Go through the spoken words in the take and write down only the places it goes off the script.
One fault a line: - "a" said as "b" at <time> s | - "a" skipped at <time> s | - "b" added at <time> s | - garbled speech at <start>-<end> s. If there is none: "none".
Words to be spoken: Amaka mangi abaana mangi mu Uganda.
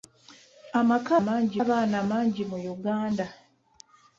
none